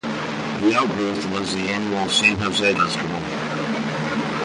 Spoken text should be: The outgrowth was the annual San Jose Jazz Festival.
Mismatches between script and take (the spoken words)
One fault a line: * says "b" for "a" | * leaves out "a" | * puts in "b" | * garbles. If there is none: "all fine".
* leaves out "Jazz"